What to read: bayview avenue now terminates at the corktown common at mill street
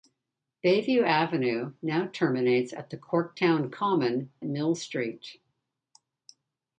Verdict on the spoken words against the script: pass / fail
fail